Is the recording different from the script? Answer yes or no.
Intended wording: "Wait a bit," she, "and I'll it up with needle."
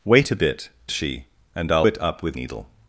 no